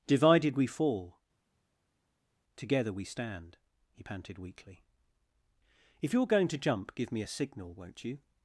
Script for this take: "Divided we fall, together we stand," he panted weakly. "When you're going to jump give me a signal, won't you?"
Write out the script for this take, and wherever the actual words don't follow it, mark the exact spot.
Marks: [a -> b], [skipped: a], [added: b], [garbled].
"Divided we fall, together we stand," he panted weakly. ["When -> If] you're going to jump give me a signal, won't you?"